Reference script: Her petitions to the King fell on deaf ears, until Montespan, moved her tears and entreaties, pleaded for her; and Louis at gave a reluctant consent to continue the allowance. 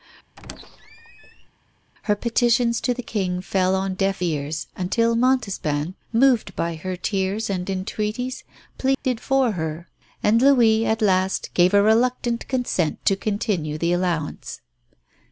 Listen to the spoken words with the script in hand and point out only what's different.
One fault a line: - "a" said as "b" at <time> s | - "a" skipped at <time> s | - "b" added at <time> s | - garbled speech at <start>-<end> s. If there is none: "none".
- "by" added at 6.5 s
- "last" added at 11.0 s